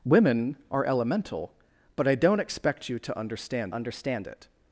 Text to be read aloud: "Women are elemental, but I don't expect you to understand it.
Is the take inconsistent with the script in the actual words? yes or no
yes